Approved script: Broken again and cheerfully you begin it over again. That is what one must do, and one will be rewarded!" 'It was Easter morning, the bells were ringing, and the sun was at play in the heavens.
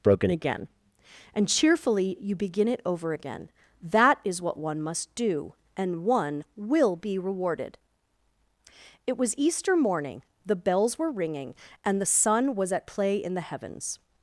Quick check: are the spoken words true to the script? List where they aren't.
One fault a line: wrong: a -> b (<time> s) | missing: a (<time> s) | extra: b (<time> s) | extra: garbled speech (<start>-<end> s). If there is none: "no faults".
no faults